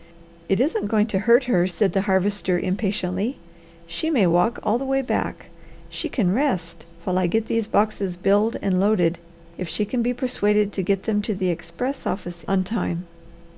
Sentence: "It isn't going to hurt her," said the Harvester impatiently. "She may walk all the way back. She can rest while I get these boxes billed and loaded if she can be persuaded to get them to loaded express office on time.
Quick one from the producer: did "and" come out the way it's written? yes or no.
yes